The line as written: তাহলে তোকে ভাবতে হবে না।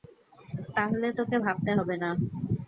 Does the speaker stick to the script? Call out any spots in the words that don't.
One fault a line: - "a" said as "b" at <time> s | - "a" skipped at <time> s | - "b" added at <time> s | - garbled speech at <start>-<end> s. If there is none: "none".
none